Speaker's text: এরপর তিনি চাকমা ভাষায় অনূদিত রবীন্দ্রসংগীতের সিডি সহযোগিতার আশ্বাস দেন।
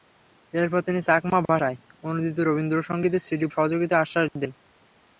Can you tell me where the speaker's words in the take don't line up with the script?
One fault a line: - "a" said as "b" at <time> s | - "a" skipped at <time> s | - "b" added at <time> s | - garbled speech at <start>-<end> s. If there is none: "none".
none